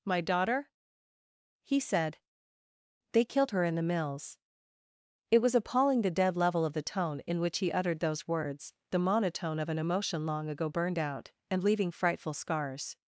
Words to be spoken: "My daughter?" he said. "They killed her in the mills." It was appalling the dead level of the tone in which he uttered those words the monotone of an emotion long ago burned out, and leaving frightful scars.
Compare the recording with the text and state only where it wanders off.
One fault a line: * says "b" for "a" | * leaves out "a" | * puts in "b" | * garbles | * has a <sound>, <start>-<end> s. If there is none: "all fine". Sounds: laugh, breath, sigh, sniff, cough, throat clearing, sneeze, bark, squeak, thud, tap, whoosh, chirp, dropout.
all fine